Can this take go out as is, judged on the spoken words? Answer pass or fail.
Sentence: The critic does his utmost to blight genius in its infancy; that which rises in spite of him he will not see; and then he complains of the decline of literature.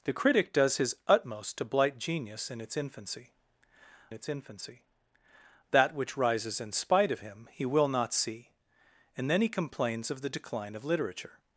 fail